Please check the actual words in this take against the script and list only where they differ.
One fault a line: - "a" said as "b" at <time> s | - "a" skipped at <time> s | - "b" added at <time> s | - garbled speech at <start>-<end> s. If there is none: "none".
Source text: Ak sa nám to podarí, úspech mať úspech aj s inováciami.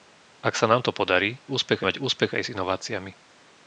none